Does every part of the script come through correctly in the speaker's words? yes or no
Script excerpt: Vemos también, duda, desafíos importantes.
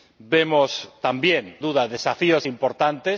yes